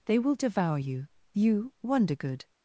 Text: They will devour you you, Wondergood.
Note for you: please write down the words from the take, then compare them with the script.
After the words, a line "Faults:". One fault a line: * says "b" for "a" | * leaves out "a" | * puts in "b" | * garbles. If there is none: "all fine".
They will devour you you, Wondergood.
Faults:
all fine